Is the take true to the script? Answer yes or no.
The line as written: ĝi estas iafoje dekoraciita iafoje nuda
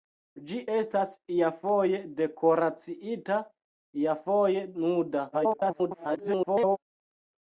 no